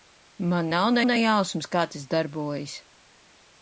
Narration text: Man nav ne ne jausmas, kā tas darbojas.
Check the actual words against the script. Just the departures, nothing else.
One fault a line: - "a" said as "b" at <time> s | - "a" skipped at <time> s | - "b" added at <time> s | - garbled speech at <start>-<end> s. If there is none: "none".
none